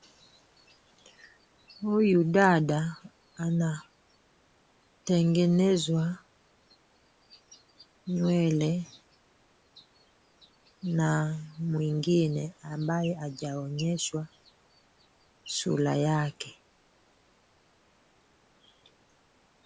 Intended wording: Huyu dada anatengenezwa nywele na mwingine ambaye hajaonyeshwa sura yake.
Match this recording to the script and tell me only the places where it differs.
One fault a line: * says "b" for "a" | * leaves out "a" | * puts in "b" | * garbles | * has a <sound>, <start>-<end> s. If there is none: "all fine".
all fine